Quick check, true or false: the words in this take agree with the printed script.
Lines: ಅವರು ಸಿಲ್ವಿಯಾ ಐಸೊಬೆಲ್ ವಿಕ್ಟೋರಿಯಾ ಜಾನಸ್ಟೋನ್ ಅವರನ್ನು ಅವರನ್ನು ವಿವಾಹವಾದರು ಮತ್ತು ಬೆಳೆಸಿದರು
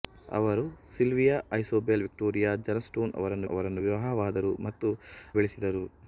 true